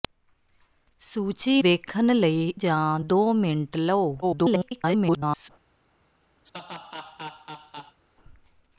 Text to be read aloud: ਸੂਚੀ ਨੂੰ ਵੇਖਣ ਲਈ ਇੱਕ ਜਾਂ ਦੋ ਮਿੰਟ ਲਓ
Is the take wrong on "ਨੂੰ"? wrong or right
wrong